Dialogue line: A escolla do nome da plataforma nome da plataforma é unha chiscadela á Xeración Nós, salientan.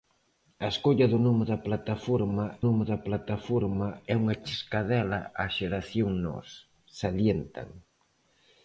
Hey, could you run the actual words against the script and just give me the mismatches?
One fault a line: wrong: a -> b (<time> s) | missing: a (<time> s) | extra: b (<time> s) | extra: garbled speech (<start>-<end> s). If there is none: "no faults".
no faults